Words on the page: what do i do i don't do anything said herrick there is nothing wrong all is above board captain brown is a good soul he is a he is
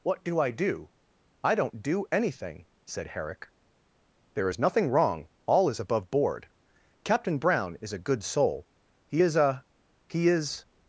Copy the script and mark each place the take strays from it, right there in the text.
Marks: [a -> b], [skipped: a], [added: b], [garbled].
what do i do i don't do anything said herrick there is nothing wrong all is above board captain brown is a good soul he is a he is